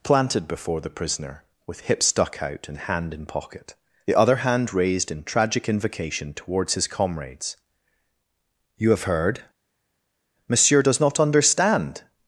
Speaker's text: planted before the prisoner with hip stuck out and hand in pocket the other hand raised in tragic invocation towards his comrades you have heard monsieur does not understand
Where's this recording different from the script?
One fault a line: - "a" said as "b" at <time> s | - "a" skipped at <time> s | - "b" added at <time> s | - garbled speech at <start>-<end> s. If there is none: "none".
none